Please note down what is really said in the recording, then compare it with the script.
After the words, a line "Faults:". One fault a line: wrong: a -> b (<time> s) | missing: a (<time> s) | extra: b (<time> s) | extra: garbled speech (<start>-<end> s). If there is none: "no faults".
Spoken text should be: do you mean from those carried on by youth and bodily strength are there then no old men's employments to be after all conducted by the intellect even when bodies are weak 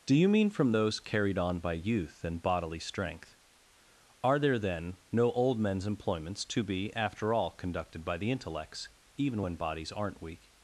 do you mean from those carried on by youth and bodily strength are there then no old men's employments to be after all conducted by the intellects even when bodies aren't weak
Faults:
wrong: intellect -> intellects (8.3 s)
wrong: are -> aren't (9.9 s)